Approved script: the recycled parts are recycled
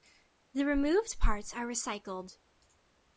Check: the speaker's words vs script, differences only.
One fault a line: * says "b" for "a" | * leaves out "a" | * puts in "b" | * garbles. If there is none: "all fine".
* says "removed" for "recycled"